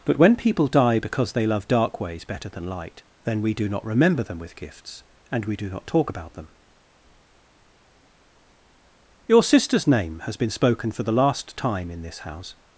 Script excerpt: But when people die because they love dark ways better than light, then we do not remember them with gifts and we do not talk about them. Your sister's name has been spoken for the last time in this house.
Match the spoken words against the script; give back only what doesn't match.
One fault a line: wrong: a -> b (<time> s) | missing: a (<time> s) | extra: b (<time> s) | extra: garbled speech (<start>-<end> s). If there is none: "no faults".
no faults